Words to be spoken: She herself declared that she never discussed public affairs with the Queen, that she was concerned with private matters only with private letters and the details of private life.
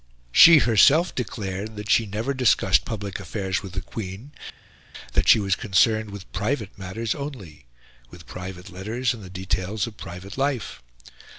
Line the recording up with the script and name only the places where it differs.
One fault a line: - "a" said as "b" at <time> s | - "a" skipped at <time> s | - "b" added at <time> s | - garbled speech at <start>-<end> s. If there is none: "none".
none